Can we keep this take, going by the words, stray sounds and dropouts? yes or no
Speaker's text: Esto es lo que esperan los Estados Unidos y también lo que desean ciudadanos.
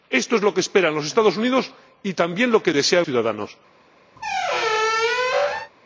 no